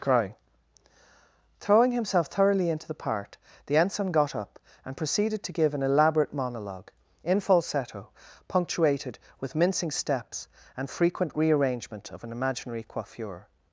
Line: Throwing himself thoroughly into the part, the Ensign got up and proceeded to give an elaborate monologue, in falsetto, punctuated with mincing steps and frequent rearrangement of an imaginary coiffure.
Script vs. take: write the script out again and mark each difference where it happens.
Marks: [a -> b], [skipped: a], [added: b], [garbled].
[added: crying] Throwing himself thoroughly into the part, the Ensign got up and proceeded to give an elaborate monologue, in falsetto, punctuated with mincing steps and frequent rearrangement of an imaginary coiffure.